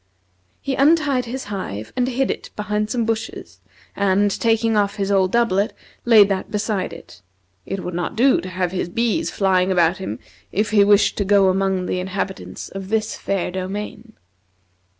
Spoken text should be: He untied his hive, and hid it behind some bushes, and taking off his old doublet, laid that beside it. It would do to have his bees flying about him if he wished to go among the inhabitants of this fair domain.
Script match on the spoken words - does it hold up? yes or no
no